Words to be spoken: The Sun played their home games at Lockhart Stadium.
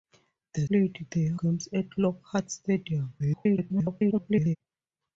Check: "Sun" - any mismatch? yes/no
yes